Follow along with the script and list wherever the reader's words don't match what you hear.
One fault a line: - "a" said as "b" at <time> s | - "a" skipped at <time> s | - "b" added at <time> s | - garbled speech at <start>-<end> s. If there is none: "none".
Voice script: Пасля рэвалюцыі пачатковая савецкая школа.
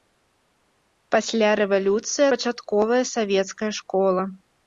none